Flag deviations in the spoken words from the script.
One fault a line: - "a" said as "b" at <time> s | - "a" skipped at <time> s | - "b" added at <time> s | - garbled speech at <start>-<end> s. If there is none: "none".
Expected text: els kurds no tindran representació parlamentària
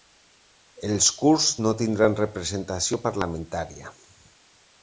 none